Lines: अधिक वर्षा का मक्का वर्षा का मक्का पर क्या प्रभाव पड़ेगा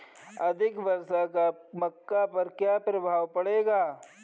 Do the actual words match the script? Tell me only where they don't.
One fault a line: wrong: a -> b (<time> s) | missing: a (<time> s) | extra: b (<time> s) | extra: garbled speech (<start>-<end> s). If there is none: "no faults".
missing: वर्षा का मक्का (2.2 s)